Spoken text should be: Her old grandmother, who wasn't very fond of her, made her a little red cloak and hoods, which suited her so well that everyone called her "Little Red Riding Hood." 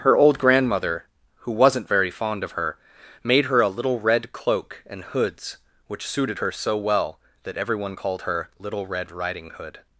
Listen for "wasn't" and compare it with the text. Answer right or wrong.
right